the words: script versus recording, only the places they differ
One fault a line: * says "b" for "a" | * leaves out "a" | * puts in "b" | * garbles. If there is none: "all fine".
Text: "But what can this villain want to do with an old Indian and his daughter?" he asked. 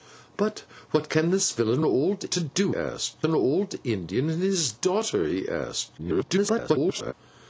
* says "old" for "want"
* says "asked" for "with"
* garbles